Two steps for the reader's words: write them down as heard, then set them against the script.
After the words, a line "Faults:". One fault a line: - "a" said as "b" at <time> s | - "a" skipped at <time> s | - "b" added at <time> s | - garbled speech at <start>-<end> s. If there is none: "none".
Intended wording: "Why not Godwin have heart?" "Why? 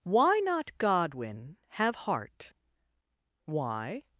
"Why not Godwin have heart?" "Why?
Faults:
none